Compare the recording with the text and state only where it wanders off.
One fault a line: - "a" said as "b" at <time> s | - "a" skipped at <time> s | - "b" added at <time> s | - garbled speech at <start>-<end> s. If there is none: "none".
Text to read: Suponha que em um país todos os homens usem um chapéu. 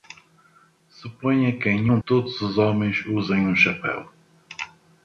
- "país" skipped at 2.0 s